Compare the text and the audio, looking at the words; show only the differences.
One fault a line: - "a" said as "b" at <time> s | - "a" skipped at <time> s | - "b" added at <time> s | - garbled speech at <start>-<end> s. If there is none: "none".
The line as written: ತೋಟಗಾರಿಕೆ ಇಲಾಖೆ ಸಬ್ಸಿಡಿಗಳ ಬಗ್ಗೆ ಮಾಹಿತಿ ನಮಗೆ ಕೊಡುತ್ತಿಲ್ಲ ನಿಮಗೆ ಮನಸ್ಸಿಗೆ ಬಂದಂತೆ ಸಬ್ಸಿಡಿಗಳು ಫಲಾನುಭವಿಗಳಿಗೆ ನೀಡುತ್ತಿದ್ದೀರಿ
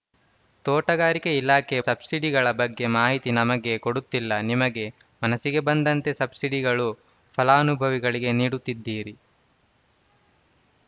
none